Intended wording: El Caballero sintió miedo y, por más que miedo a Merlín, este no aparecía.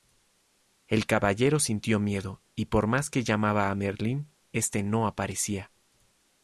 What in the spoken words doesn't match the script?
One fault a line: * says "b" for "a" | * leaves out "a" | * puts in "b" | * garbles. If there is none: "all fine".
* says "llamaba" for "miedo"